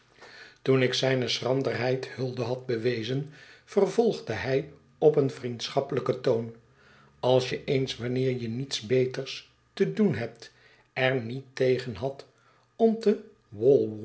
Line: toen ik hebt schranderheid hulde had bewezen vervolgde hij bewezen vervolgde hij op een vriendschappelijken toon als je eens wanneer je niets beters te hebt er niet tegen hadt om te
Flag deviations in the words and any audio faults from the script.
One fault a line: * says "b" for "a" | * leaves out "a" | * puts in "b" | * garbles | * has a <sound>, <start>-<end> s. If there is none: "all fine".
* says "zijne" for "hebt"
* leaves out "bewezen vervolgde hij"
* puts in "doen"